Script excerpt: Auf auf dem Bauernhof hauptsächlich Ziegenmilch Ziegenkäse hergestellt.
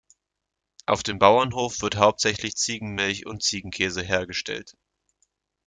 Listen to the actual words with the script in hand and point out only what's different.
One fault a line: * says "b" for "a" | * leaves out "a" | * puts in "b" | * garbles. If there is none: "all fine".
* leaves out "auf"
* puts in "wird"
* puts in "und"